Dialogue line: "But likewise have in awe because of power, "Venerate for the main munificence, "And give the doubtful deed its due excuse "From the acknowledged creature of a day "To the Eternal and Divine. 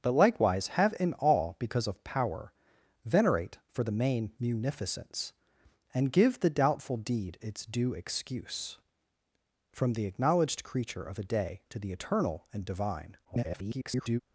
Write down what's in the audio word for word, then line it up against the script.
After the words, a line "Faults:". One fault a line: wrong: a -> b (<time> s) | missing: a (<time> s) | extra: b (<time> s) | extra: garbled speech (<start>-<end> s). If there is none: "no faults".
"But likewise have in awe because of power, "Venerate for the main munificence, "And give the doubtful deed its due excuse "From the acknowledged creature of a day "To the Eternal and Divine. [garbled]
Faults:
extra: garbled speech (13.2-14.2 s)